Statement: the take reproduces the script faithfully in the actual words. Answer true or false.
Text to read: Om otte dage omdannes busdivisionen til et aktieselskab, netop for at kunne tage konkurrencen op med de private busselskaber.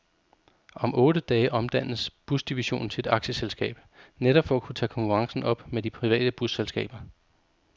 true